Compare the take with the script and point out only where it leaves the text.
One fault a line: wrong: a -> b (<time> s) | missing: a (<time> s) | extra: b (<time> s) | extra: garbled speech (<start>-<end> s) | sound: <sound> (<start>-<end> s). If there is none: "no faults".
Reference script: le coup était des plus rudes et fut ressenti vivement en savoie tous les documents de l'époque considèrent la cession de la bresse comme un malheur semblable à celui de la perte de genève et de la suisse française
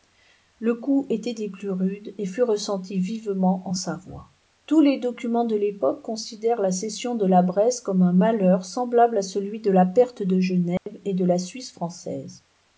sound: dropout (10.8-10.9 s)